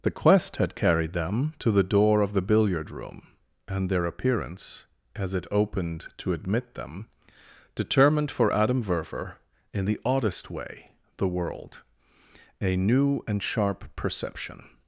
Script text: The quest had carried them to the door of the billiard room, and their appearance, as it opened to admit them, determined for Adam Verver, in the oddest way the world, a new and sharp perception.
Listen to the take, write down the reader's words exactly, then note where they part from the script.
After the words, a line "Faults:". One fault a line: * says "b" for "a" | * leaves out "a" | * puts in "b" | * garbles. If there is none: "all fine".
The quest had carried them to the door of the billiard room, and their appearance, as it opened to admit them, determined for Adam Verver, in the oddest way the world, a new and sharp perception.
Faults:
all fine